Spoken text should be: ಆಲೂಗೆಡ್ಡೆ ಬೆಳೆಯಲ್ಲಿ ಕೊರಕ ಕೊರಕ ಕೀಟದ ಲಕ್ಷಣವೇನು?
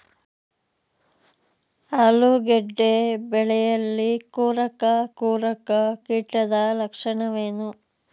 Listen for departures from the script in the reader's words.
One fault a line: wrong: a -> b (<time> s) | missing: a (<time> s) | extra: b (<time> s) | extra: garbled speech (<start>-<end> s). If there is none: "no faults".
no faults